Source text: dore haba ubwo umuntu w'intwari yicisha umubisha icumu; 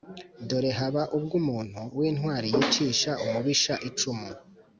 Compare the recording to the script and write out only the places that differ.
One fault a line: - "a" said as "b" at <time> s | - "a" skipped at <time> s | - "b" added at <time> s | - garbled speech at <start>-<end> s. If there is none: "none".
none